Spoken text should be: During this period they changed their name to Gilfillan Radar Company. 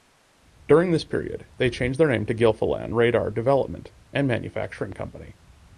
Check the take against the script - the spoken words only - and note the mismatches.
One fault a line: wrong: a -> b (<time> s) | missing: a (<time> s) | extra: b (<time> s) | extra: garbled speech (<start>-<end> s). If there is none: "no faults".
extra: Development and Manufacturing (3.3 s)